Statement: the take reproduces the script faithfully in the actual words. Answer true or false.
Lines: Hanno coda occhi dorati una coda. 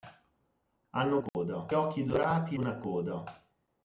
true